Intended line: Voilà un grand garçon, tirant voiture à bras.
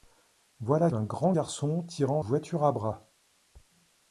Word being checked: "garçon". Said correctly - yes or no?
yes